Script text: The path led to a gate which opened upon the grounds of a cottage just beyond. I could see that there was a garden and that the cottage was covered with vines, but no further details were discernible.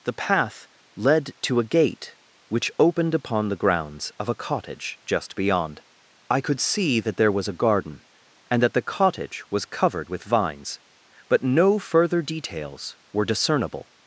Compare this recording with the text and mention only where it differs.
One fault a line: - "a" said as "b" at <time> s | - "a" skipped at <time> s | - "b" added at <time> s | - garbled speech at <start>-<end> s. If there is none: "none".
none